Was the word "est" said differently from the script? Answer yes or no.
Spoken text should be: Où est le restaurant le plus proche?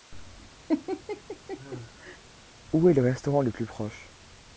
no